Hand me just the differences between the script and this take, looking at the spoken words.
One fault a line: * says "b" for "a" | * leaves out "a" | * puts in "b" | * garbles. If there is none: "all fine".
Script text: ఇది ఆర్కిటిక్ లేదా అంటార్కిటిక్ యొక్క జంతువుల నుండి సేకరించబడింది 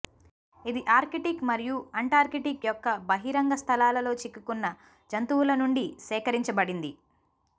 * says "మరియు" for "లేదా"
* puts in "బహిరంగ స్థలాలలో చిక్కుకున్న"